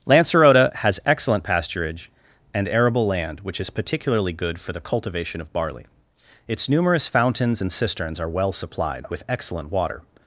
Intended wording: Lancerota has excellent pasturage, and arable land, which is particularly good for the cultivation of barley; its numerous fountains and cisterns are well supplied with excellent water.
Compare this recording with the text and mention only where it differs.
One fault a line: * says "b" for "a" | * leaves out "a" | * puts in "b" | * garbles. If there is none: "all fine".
all fine